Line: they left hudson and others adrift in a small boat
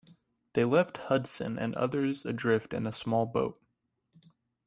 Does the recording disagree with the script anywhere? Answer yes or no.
no